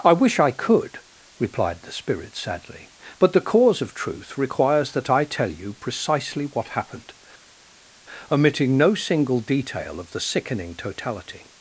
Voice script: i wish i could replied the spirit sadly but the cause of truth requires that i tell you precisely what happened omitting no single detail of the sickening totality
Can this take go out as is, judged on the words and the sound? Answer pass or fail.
pass